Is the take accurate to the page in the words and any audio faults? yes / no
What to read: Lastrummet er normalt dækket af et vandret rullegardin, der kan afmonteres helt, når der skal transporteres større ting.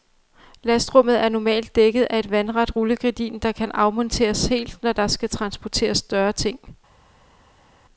yes